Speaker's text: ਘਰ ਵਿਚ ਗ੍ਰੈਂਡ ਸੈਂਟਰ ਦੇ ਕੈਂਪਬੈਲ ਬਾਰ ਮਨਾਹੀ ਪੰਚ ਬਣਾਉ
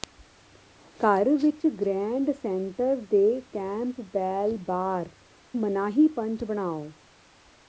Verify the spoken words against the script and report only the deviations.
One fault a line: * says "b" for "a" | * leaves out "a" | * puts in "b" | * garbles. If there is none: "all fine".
all fine